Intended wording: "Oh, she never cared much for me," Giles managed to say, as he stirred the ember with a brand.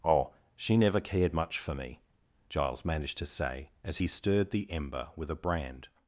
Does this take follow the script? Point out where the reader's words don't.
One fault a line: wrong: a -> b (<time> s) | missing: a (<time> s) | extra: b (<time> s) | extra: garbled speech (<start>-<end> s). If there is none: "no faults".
no faults